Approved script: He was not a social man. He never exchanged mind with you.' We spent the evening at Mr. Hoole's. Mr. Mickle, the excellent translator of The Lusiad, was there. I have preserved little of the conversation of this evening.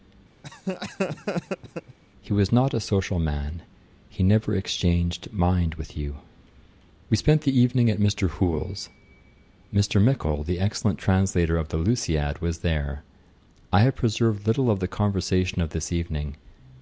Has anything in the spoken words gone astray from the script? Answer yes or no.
no